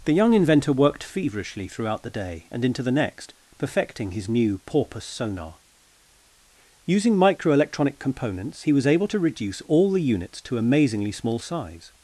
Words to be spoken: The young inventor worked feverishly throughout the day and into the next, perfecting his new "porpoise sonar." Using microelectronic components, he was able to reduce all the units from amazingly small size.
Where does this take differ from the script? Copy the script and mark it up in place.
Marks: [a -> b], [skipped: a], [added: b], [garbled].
The young inventor worked feverishly throughout the day and into the next, perfecting his new "porpoise sonar." Using microelectronic components, he was able to reduce all the units [from -> to] amazingly small size.